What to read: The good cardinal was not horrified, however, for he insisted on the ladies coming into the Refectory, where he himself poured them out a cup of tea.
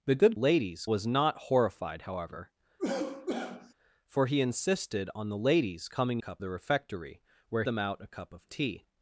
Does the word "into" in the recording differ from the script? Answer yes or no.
yes